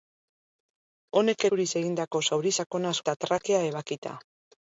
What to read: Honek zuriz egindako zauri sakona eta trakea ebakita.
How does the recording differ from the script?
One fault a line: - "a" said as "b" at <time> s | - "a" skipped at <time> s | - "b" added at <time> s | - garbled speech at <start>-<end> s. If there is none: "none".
none